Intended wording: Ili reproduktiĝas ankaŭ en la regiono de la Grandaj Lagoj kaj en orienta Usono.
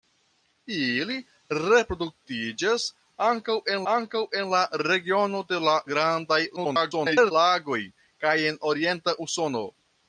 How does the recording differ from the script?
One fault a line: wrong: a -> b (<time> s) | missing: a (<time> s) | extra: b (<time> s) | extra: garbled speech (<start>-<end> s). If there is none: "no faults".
extra: ankaŭ en (3.9 s)
extra: garbled speech (6.6-7.3 s)